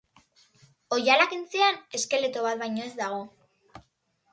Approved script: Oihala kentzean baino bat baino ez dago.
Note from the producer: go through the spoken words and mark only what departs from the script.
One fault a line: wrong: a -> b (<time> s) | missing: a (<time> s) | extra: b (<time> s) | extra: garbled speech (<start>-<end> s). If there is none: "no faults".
wrong: baino -> eskeleto (2.0 s)